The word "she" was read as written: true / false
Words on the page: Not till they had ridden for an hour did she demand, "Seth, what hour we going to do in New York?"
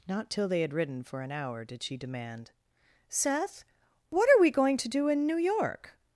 true